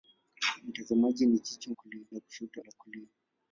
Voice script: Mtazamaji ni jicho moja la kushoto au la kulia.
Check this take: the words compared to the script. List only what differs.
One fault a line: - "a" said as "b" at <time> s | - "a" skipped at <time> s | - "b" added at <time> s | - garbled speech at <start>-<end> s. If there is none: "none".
- "moja" said as "kulia" at 1.8 s
- "au" skipped at 2.6 s